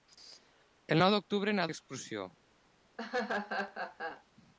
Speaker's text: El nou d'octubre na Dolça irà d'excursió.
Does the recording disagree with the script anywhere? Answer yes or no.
yes